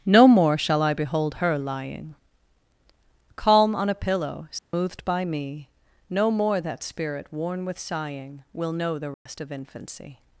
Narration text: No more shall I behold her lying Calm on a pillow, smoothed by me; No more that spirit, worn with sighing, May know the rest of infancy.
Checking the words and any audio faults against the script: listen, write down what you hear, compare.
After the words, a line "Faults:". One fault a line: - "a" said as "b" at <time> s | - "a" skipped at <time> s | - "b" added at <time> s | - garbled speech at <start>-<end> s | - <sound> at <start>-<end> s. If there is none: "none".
No more shall I behold her lying Calm on a pillow, smoothed by me; No more that spirit, worn with sighing, Will know the rest of infancy.
Faults:
- dropout at 4.6-4.7 s
- "May" said as "Will" at 8.5 s
- dropout at 9.1-9.3 s